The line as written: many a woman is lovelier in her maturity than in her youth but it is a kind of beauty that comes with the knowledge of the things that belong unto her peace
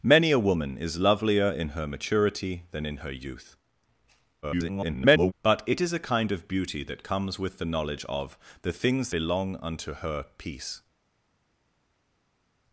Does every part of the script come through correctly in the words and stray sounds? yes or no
no